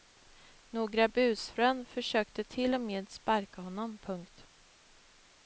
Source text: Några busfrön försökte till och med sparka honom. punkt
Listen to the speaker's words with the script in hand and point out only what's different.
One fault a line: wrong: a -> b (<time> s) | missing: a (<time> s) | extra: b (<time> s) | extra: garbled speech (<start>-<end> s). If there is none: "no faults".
no faults